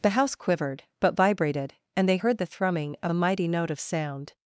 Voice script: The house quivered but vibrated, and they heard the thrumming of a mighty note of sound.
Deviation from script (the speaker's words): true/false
false